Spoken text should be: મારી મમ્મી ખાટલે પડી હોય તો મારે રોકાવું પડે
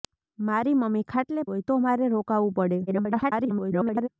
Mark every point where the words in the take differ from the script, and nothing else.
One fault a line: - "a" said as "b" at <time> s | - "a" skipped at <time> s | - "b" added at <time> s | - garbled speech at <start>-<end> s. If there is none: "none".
- "પડી" skipped at 1.4 s
- garbled speech at 2.9-4.1 s